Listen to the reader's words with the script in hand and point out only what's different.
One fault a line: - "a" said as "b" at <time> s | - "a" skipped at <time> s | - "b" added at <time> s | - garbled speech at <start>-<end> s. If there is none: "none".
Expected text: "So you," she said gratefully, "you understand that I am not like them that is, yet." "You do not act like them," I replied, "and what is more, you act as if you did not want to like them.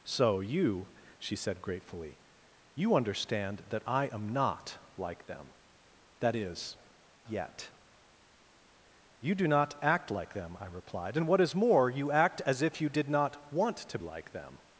none